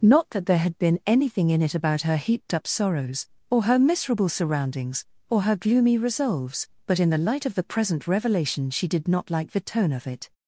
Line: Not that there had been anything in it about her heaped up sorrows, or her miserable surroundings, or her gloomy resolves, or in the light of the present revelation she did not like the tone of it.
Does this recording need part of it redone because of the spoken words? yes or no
yes